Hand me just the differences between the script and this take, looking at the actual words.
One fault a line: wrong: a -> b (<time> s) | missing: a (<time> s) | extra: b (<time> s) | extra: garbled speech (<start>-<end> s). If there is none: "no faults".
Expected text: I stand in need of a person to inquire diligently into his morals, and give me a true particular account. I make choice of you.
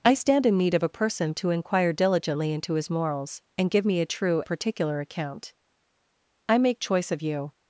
no faults